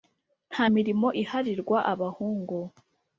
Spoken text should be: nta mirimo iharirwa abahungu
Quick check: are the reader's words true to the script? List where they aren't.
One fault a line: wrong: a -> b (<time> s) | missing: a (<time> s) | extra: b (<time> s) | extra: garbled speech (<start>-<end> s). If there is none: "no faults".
no faults